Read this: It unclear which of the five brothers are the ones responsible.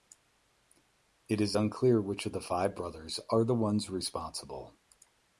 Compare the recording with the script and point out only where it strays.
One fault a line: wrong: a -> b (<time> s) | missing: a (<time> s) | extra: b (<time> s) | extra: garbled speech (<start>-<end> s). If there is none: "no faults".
extra: is (1.4 s)